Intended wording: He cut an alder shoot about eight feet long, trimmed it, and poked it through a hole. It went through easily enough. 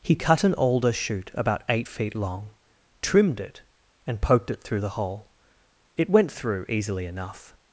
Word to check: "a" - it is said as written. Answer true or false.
false